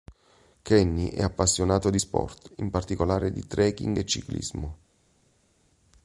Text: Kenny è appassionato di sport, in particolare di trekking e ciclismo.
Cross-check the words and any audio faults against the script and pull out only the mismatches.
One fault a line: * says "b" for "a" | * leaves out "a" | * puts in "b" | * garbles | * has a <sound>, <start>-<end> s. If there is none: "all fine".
all fine